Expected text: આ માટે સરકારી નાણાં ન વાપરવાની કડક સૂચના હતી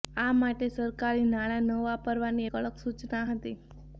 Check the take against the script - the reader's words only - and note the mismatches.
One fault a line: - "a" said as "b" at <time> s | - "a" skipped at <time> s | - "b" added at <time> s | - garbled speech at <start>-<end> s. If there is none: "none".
none